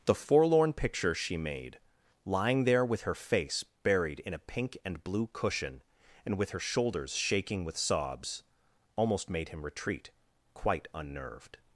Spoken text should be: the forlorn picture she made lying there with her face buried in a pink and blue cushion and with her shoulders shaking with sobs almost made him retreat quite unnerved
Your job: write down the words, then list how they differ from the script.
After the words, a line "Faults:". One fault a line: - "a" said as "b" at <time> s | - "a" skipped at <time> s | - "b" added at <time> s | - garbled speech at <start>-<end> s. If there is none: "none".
the forlorn picture she made lying there with her face buried in a pink and blue cushion and with her shoulders shaking with sobs almost made him retreat quite unnerved
Faults:
none